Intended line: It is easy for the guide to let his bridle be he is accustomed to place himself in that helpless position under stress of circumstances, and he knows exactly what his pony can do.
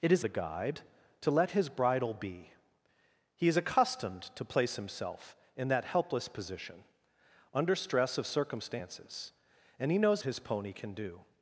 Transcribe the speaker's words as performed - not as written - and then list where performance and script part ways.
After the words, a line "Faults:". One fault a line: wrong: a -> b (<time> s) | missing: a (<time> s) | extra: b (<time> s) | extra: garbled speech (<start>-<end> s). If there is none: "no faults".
It is the guide to let his bridle be he is accustomed to place himself in that helpless position under stress of circumstances, and he knows his pony can do.
Faults:
missing: easy for (0.2 s)
missing: exactly what (10.2 s)